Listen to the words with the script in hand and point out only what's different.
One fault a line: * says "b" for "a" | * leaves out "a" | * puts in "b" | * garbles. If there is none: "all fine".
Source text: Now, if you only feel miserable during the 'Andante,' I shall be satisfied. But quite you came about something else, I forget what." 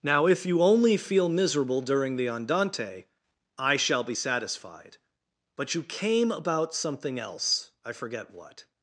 * leaves out "quite"